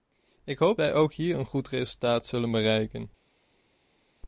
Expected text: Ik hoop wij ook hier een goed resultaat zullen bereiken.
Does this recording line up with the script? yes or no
yes